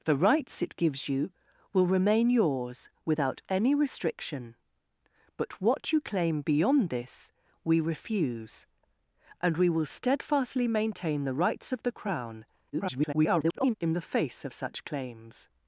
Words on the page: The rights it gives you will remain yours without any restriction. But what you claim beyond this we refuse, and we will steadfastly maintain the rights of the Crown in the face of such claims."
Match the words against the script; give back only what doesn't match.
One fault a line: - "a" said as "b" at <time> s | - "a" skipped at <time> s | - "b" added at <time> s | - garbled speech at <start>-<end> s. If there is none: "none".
- garbled speech at 12.7-13.7 s